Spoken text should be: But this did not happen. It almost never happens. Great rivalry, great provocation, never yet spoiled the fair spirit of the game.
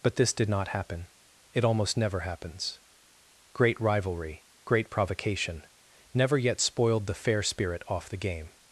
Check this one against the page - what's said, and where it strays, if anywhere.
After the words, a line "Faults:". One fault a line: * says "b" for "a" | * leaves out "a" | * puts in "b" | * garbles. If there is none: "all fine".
But this did not happen. It almost never happens. Great rivalry, great provocation, never yet spoiled the fair spirit off the game.
Faults:
* says "off" for "of"